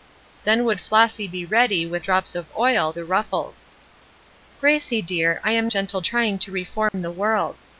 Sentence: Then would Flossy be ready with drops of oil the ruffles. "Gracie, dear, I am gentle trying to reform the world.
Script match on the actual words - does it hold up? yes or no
yes